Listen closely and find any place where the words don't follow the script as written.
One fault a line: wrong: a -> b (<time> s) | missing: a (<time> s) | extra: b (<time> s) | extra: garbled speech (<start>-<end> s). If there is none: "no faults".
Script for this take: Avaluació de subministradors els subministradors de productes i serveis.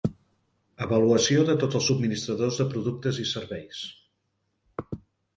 wrong: subministradors -> tots (1.6 s)